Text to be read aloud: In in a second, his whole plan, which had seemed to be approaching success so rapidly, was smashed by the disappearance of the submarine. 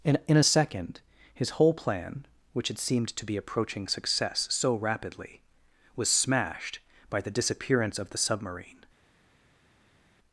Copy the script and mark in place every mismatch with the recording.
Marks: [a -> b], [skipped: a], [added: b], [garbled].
In in a second, his whole plan, which had seemed to be approaching success so rapidly, was smashed by the disappearance of the submarine.